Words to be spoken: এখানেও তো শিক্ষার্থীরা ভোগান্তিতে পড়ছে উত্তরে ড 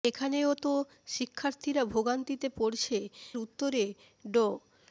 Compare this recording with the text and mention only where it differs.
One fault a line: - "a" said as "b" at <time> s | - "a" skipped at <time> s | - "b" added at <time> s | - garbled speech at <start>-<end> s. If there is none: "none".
none